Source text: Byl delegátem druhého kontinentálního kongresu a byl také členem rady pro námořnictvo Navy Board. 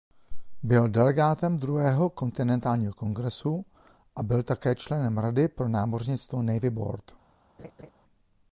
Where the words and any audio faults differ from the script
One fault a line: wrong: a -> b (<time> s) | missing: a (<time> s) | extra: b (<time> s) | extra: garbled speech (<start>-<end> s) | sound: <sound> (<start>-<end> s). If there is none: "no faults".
sound: laugh (7.6-7.9 s)